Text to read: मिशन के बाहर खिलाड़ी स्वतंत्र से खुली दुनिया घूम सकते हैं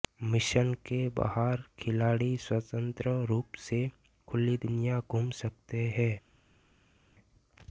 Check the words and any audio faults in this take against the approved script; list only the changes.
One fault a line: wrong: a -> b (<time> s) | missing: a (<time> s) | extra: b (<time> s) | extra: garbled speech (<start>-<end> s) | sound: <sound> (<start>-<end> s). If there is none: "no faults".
extra: रूप (3.3 s)